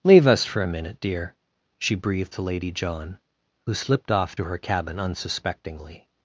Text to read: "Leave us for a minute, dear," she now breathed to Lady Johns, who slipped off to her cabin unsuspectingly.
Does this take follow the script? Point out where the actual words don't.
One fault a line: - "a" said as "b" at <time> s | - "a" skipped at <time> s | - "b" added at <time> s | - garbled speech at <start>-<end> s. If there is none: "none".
- "now" skipped at 1.9 s
- "Johns" said as "John" at 2.7 s